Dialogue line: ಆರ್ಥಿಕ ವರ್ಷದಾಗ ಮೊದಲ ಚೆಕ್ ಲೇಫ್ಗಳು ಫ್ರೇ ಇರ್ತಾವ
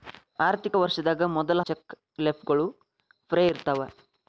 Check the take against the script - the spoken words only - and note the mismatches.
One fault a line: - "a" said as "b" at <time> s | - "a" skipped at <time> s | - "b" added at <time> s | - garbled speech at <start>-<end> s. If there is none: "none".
none